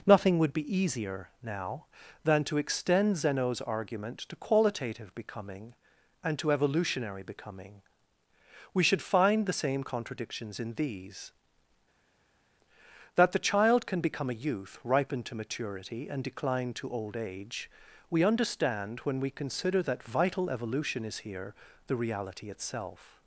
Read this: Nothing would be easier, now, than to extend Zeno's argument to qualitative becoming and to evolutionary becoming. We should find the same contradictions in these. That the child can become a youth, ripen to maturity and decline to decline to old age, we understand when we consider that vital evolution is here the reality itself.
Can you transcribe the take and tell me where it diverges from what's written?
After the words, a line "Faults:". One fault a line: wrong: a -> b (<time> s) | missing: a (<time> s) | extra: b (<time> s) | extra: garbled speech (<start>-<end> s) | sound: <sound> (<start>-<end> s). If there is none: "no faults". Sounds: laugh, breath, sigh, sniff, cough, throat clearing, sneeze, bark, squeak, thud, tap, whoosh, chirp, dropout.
Nothing would be easier, now, than to extend Zeno's argument to qualitative becoming and to evolutionary becoming. We should find the same contradictions in these. That the child can become a youth, ripen to maturity and decline to old age, we understand when we consider that vital evolution is here the reality itself.
Faults:
missing: decline to (16.9 s)